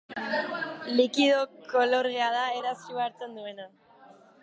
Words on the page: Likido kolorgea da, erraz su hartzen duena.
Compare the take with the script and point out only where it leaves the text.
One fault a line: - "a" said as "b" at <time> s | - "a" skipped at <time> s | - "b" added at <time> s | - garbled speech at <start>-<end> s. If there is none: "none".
none